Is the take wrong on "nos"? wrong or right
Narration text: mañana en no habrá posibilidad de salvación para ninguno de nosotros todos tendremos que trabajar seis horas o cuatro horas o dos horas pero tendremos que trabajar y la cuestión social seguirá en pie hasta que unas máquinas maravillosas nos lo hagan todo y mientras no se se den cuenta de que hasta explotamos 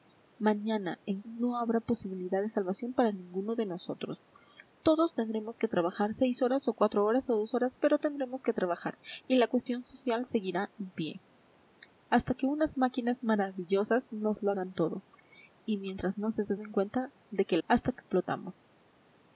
right